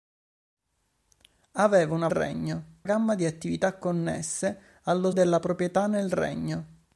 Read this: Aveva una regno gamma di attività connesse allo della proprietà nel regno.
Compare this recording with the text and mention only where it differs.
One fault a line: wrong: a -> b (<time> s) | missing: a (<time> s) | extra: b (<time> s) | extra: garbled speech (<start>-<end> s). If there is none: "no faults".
no faults